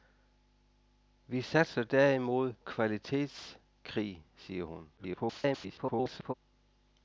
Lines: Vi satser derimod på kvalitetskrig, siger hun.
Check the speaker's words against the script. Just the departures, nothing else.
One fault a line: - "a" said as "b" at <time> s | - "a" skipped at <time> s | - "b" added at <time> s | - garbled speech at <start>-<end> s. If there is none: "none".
- "på" skipped at 2.5 s
- garbled speech at 5.0-6.3 s